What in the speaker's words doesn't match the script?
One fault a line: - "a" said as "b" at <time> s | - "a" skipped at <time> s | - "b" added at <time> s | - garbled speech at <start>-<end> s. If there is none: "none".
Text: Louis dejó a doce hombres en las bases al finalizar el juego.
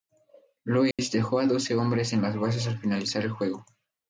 none